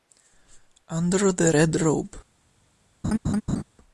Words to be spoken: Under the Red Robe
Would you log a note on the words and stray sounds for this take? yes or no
yes